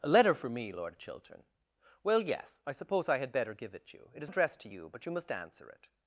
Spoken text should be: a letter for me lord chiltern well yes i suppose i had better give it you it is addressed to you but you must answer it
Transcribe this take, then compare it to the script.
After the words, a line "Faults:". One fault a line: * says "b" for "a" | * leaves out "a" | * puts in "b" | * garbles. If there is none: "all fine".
a letter for me lord chiltern well yes i suppose i had better give it you it is addressed to you but you must answer it
Faults:
all fine